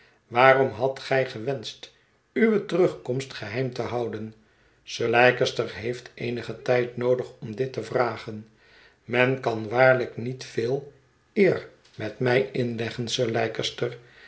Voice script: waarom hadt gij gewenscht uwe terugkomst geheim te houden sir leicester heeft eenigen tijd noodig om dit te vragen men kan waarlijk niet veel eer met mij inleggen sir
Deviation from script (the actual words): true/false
false